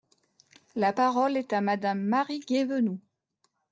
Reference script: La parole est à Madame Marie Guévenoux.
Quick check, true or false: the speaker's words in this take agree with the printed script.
true